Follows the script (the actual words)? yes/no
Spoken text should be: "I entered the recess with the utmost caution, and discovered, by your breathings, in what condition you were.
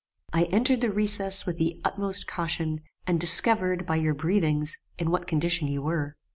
yes